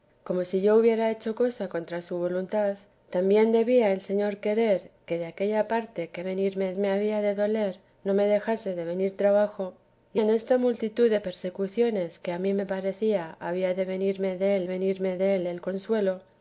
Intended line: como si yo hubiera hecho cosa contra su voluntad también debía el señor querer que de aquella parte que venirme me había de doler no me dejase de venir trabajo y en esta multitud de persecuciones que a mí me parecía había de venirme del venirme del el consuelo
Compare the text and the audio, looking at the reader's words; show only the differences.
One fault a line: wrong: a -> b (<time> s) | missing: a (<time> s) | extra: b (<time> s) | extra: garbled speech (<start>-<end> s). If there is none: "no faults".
no faults